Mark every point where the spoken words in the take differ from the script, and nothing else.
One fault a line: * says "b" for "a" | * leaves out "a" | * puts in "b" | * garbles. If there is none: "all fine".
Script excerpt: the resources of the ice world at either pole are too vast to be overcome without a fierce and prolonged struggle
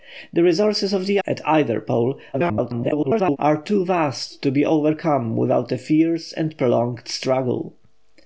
* leaves out "ice world"
* garbles